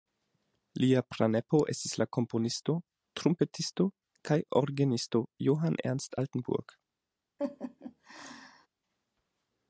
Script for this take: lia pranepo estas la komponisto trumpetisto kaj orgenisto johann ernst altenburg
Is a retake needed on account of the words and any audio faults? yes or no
yes